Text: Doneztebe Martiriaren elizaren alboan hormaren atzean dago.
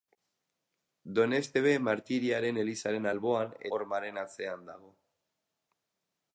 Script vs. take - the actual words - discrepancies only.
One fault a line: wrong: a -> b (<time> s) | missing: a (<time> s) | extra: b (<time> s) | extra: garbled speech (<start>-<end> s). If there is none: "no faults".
no faults